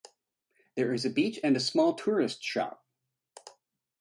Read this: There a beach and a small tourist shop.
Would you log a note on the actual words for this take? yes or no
yes